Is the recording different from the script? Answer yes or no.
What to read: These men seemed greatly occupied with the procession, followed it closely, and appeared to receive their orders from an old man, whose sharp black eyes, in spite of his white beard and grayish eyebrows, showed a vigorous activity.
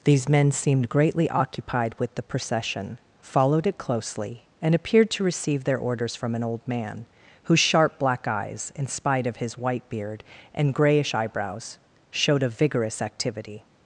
no